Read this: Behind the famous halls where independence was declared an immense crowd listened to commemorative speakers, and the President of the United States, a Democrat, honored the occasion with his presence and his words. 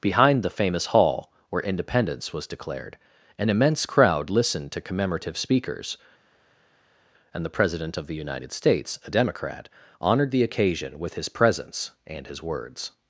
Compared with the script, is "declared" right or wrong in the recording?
right